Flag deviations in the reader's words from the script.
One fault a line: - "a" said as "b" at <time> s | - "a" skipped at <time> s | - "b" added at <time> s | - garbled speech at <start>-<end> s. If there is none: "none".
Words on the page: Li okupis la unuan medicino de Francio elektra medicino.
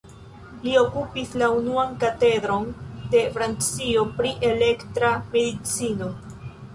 - "medicino" said as "katedron" at 2.0 s
- "pri" added at 4.2 s